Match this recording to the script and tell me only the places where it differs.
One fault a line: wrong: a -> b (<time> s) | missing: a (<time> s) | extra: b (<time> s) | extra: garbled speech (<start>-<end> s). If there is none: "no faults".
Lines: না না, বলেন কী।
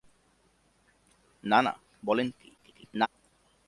extra: garbled speech (2.6-3.1 s)